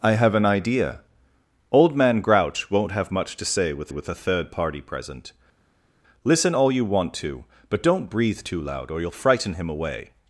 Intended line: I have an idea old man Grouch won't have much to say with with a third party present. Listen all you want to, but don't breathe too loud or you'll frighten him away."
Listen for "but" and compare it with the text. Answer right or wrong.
right